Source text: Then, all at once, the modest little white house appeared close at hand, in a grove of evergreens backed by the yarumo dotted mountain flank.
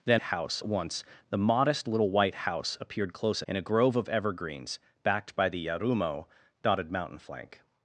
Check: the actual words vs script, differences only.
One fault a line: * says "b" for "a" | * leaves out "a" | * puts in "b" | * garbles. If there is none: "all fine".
* says "house" for "all"
* leaves out "at hand"